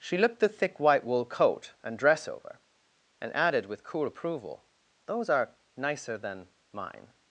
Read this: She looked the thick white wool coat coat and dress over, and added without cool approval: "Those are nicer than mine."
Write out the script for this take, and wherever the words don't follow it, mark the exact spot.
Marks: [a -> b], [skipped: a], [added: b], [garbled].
She looked the thick white wool coat [skipped: coat] and dress over, and added [without -> with] cool approval: "Those are nicer than mine."